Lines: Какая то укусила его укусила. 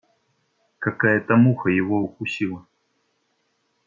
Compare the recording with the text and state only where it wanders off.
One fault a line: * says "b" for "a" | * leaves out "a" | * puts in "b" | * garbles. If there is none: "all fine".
* says "муха" for "укусила"